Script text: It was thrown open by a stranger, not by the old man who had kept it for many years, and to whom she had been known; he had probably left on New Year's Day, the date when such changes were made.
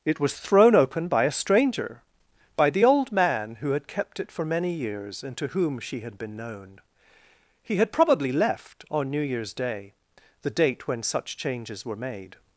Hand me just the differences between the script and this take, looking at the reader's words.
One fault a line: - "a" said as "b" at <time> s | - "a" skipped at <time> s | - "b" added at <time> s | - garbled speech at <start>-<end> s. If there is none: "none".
- "not" skipped at 2.0 s